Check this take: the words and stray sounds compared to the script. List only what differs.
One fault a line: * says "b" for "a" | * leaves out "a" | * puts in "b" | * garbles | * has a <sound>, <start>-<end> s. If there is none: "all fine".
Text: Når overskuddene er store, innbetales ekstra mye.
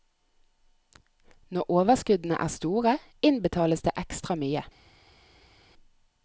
* puts in "det"